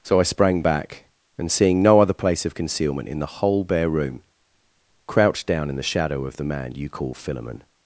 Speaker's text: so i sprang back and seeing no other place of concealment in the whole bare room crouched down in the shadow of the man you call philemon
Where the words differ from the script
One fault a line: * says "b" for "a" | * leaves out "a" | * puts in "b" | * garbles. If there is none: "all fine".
all fine